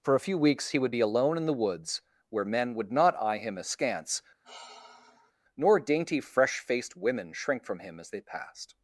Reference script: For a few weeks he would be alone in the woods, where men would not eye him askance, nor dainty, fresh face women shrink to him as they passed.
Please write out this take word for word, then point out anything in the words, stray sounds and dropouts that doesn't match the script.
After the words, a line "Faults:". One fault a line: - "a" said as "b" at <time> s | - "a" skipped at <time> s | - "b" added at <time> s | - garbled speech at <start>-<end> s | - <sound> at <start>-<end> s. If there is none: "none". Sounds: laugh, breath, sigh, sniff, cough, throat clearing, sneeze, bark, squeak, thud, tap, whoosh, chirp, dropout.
For a few weeks he would be alone in the woods, where men would not eye him askance, nor dainty, fresh faced women shrink from him as they passed.
Faults:
- sigh at 4.4-5.3 s
- "face" said as "faced" at 6.6 s
- "to" said as "from" at 7.7 s